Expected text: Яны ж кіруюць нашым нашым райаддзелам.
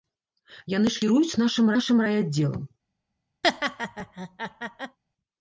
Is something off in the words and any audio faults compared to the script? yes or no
yes